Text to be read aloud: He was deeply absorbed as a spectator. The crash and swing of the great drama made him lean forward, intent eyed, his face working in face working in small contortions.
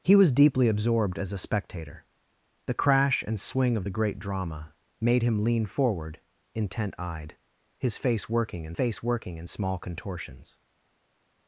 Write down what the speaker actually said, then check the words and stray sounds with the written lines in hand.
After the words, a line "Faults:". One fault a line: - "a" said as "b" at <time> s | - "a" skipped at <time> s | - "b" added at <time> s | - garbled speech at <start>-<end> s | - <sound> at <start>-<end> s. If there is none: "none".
He was deeply absorbed as a spectator. The crash and swing of the great drama made him lean forward, intent eyed, his face working in face working in small contortions.
Faults:
none